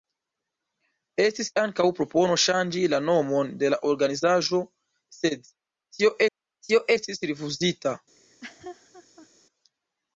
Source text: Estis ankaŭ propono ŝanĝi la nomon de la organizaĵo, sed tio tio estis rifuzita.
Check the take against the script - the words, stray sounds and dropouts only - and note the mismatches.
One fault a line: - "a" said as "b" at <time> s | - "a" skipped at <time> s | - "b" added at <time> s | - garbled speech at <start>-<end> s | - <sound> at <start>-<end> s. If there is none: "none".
- laugh at 8.2-9.3 s